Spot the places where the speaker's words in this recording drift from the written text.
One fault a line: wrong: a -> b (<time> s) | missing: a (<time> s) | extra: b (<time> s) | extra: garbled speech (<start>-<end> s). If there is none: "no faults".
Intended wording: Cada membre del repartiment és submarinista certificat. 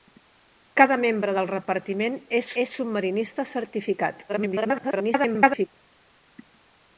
extra: és (2.6 s)
extra: garbled speech (4.3-5.7 s)